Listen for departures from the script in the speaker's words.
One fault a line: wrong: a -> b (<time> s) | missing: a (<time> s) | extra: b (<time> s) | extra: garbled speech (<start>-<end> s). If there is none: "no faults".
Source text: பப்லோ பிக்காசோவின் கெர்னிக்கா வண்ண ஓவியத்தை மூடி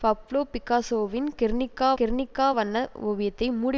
extra: கெர்னிக்கா (2.0 s)